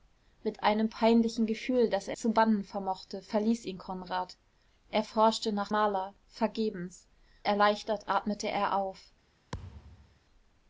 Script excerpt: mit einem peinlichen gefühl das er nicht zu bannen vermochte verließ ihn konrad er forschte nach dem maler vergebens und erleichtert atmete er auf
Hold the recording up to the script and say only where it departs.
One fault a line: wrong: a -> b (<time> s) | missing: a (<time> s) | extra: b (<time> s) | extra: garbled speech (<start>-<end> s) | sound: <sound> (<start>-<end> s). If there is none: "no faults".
missing: nicht (2.2 s)
missing: dem (5.7 s)
missing: und (7.1 s)
sound: thud (9.5-10.2 s)